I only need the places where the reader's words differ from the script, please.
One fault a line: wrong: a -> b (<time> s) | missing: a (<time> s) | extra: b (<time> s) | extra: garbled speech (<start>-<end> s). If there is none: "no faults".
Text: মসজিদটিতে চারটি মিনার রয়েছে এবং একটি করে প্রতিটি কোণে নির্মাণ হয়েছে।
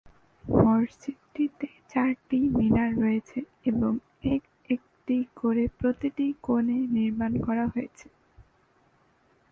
extra: এক (4.3 s)
extra: করা (7.5 s)